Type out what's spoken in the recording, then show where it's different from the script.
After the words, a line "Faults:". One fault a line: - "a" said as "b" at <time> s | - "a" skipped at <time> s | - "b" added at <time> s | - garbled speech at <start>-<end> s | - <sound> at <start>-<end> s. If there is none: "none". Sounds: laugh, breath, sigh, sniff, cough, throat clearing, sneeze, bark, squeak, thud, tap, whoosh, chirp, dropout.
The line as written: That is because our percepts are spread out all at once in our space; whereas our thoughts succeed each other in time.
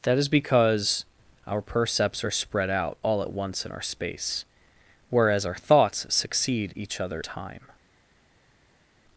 That is because our percepts are spread out all at once in our space; whereas our thoughts succeed each other time.
Faults:
- "in" skipped at 7.2 s